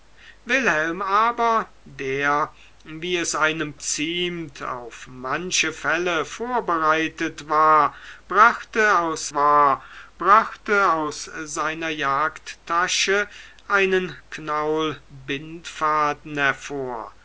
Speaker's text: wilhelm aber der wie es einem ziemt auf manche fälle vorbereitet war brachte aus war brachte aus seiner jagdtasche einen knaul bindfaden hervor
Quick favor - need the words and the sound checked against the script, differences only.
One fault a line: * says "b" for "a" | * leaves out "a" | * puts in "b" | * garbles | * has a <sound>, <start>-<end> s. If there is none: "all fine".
all fine